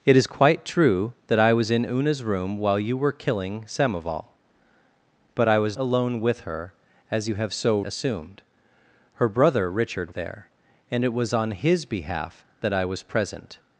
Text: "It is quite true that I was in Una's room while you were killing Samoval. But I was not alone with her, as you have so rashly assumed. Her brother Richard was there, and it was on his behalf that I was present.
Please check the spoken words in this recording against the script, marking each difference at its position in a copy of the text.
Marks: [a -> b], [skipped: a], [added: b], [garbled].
"It is quite true that I was in Una's room while you were killing Samoval. But I was [skipped: not] alone with her, as you have so [skipped: rashly] assumed. Her brother Richard [skipped: was] there, and it was on his behalf that I was present.